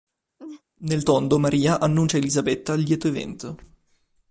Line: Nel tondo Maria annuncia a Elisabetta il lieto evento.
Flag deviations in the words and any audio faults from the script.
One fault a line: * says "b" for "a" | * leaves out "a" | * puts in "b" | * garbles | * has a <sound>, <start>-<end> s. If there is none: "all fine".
* has a laugh, 0.4-0.6 s